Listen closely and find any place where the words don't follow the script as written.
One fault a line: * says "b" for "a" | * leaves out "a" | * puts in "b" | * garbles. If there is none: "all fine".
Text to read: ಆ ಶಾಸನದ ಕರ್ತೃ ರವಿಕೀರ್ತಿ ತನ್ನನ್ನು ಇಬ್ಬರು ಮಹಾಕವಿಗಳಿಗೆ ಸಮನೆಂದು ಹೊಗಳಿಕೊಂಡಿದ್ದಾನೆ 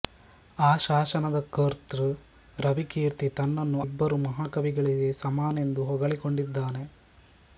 all fine